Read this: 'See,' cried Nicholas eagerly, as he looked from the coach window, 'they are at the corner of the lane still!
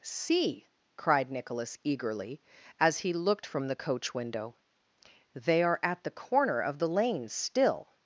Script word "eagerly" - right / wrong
right